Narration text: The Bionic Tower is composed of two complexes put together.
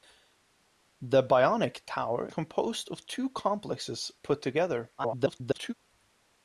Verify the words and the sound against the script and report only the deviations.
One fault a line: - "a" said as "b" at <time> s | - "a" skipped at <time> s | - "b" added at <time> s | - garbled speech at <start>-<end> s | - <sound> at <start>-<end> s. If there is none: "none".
- "is" skipped at 2.3 s
- garbled speech at 5.0-5.7 s